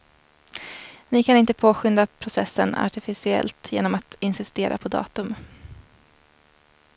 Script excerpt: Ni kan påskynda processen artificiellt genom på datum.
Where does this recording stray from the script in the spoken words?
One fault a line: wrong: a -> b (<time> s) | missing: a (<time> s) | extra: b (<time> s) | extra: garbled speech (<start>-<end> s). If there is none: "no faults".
extra: inte (1.4 s)
extra: att insistera (4.0 s)